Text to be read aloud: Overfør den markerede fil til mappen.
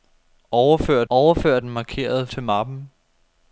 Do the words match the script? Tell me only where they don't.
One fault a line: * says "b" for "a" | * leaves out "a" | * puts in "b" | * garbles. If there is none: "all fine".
* puts in "overfør"
* leaves out "fil"